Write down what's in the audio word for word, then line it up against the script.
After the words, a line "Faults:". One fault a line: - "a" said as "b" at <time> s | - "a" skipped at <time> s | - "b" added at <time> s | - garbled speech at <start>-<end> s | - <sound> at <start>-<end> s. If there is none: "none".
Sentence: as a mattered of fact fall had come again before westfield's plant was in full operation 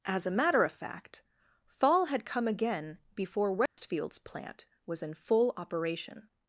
as a matter of fact fall had come again before westfield's plant was in full operation
Faults:
- "mattered" said as "matter" at 0.3 s
- dropout at 3.7-3.8 s